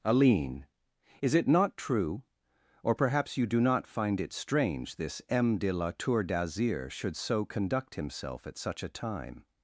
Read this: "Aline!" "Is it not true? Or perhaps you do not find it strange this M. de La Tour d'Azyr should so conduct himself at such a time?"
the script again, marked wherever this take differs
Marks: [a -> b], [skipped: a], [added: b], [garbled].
"Aline!" "Is it not true? Or perhaps you do not find it strange this M. de La Tour d'Azyr should so conduct himself at such a time?"